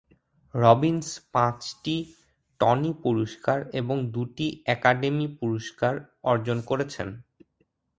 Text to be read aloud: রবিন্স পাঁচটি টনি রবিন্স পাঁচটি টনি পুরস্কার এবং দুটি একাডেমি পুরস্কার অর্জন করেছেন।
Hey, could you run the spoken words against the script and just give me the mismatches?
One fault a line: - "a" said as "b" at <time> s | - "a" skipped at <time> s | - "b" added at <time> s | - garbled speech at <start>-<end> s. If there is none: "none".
- "রবিন্স পাঁচটি টনি" skipped at 2.9 s